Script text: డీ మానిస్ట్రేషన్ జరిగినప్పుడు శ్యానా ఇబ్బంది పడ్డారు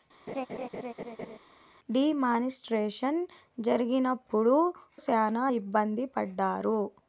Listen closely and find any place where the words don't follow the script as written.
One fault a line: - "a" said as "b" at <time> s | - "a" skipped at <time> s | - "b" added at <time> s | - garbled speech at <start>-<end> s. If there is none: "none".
none